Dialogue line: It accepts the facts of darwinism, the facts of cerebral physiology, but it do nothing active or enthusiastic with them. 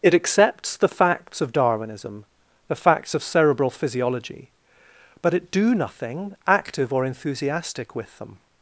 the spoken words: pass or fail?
pass